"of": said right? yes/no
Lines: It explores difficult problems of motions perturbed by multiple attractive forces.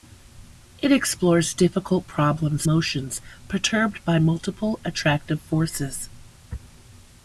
no